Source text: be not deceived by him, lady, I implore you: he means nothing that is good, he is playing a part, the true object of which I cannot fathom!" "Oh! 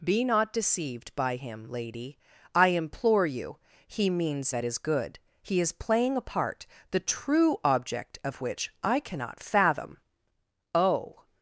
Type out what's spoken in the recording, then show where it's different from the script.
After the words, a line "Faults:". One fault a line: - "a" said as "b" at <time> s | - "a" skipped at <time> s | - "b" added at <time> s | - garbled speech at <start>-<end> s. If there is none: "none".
be not deceived by him, lady, I implore you: he means that is good, he is playing a part, the true object of which I cannot fathom!" "Oh!
Faults:
- "nothing" skipped at 4.5 s